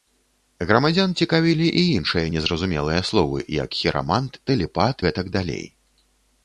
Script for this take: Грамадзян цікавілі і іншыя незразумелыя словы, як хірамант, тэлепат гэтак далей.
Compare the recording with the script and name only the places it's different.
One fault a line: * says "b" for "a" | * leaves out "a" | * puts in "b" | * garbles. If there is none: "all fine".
all fine